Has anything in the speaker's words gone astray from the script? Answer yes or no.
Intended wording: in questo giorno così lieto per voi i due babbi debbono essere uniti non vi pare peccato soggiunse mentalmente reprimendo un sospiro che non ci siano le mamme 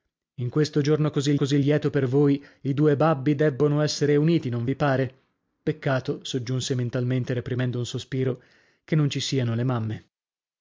yes